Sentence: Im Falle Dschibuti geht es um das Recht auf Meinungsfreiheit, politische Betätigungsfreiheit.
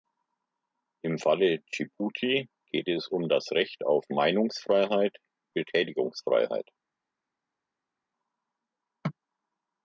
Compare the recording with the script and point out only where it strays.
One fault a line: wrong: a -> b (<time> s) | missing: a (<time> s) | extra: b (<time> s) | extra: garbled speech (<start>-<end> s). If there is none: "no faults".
missing: politische (5.2 s)